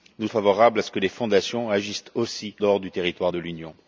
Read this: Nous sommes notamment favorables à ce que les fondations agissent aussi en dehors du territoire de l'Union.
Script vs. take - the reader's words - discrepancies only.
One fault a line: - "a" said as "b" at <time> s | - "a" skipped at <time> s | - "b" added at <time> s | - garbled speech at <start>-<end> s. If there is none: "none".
- "sommes notamment" skipped at 0.3 s
- "en" skipped at 2.6 s